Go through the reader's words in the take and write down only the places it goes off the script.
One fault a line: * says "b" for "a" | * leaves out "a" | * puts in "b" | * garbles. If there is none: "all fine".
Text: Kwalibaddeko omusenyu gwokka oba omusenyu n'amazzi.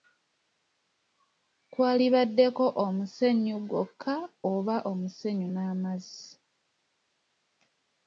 all fine